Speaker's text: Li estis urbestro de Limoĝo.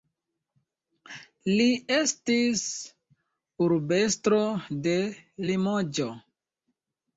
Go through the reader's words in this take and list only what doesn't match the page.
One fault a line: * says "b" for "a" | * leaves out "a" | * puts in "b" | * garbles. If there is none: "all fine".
all fine